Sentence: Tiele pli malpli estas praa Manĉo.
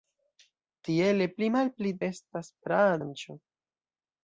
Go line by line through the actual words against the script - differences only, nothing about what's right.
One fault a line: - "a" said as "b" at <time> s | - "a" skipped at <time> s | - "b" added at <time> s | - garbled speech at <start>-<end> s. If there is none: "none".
none